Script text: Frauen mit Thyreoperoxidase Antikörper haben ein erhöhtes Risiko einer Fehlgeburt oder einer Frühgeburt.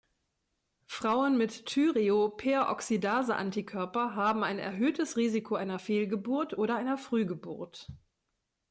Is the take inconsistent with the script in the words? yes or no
no